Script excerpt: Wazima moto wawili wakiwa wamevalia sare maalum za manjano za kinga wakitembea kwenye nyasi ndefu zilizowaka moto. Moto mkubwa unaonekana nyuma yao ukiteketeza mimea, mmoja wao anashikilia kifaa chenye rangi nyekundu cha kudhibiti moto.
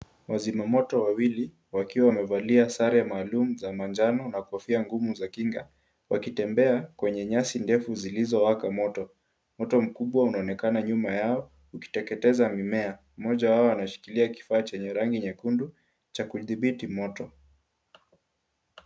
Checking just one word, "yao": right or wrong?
right